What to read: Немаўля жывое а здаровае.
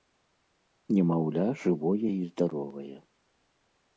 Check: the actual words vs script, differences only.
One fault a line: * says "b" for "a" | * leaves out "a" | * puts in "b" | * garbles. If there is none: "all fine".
* says "і" for "а"